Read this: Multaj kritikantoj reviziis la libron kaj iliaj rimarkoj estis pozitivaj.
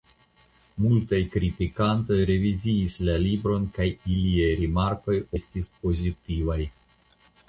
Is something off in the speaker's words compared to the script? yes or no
no